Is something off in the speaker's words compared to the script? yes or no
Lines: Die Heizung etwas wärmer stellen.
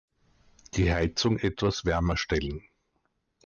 no